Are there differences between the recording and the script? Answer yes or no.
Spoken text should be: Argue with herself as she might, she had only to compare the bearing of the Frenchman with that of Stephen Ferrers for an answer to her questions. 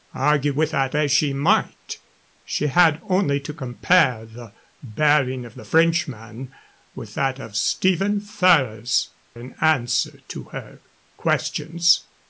yes